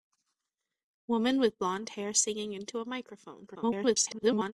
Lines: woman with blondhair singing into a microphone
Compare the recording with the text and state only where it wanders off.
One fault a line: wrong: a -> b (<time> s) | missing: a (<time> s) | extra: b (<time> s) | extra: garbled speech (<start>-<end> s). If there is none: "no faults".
extra: garbled speech (3.5-4.5 s)